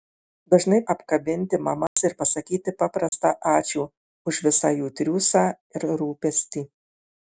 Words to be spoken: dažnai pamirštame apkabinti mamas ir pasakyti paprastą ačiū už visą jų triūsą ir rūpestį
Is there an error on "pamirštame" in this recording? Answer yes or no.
yes